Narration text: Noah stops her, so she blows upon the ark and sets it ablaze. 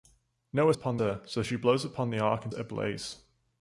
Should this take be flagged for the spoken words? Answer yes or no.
yes